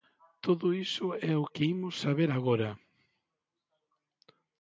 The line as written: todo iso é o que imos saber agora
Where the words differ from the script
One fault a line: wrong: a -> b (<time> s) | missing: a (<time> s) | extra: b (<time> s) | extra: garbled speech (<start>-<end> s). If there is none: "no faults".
no faults